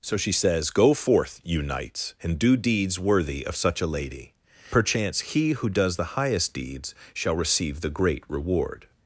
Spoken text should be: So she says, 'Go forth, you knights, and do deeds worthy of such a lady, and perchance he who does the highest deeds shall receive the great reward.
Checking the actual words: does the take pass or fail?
fail